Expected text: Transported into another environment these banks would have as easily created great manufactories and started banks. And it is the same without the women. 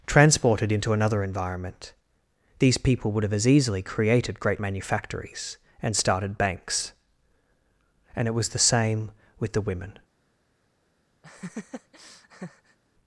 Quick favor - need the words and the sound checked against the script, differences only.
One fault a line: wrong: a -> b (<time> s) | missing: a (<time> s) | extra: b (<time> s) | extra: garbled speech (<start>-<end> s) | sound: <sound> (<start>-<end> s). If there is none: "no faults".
wrong: banks -> people (2.8 s)
wrong: is -> was (8.3 s)
wrong: without -> with (9.4 s)
sound: laugh (11.2-12.8 s)